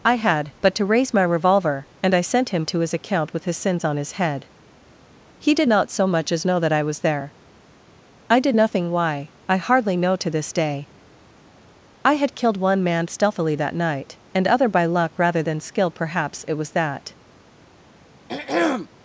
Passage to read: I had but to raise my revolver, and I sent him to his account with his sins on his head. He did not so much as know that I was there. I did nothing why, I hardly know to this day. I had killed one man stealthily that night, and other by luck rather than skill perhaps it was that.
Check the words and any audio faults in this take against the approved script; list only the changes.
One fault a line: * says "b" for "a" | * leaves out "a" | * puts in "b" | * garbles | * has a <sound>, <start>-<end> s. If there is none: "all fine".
* has a throat clearing, 18.3-18.9 s